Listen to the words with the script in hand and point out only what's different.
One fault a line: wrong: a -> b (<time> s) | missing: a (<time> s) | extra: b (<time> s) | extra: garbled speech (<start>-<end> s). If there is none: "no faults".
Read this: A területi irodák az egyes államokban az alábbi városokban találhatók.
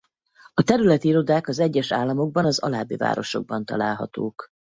no faults